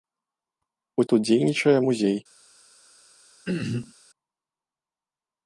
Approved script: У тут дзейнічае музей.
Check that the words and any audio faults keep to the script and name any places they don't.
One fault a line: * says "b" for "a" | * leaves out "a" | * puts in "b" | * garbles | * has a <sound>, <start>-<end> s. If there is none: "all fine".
* has a throat clearing, 3.5-3.9 s